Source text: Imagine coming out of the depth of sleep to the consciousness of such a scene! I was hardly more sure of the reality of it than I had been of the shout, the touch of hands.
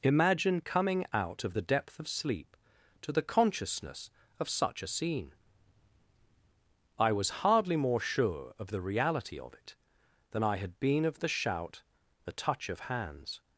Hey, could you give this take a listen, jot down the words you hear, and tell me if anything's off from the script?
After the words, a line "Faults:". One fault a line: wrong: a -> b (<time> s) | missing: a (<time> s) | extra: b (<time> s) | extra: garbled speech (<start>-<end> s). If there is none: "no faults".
Imagine coming out of the depth of sleep to the consciousness of such a scene! I was hardly more sure of the reality of it than I had been of the shout, the touch of hands.
Faults:
no faults